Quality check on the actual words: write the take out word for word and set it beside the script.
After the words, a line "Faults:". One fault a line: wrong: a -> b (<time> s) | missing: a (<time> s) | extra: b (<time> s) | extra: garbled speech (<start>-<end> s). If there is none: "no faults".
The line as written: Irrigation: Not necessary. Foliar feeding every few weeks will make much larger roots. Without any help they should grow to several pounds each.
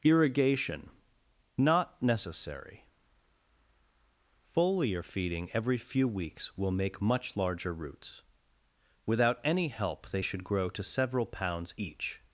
Irrigation: Not necessary. Foliar feeding every few weeks will make much larger roots. Without any help they should grow to several pounds each.
Faults:
no faults